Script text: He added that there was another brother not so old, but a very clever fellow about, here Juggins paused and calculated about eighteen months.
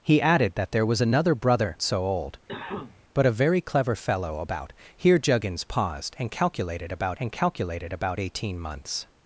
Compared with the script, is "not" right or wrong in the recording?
wrong